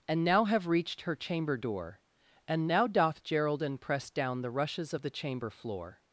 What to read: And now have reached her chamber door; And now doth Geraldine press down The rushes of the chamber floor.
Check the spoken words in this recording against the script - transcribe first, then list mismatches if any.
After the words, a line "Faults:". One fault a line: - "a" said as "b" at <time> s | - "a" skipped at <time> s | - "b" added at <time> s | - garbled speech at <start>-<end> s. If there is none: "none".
And now have reached her chamber door; And now doth Geraldine press down The rushes of the chamber floor.
Faults:
none